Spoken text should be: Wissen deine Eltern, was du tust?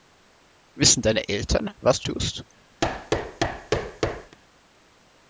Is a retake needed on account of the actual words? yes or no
no